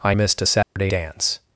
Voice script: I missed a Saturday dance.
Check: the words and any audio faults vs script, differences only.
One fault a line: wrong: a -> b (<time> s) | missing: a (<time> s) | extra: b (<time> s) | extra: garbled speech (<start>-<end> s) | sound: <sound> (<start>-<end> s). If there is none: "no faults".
sound: dropout (0.6-0.8 s)